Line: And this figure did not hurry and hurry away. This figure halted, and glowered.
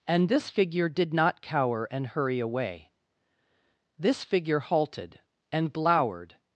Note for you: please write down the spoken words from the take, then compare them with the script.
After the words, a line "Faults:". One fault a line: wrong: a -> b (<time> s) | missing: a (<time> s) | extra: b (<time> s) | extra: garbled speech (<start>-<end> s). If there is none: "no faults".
And this figure did not cower and hurry away. This figure halted, and glowered.
Faults:
wrong: hurry -> cower (1.4 s)